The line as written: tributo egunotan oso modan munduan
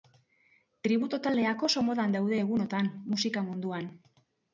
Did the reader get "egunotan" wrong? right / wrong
wrong